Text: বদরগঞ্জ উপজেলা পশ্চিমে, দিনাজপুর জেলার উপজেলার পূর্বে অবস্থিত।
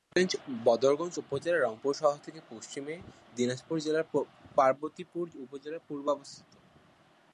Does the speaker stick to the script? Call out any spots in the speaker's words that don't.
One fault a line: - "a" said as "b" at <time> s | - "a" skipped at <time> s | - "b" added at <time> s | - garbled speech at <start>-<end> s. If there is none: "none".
- "রংপুর শহর থেকে" added at 1.6 s
- "পার্বতীপুর" added at 4.6 s